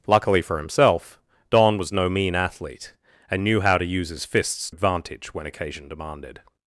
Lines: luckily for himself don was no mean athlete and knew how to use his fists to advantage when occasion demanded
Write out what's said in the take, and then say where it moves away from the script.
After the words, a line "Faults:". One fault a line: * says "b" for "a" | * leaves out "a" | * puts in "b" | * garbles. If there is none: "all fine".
luckily for himself don was no mean athlete and knew how to use his fists advantage when occasion demanded
Faults:
* leaves out "to"